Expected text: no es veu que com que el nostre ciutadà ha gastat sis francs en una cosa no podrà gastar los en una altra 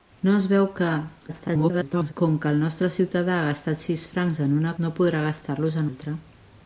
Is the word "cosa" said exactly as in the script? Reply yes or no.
no